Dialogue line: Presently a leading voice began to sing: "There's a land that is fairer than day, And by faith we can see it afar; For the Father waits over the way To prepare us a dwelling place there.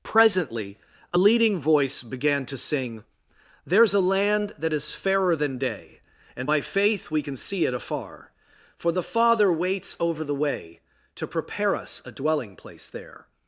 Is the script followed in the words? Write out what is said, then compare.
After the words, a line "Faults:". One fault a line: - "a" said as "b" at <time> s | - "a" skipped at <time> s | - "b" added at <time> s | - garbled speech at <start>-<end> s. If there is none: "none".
Presently a leading voice began to sing: "There's a land that is fairer than day, And by faith we can see it afar; For the Father waits over the way To prepare us a dwelling place there.
Faults:
none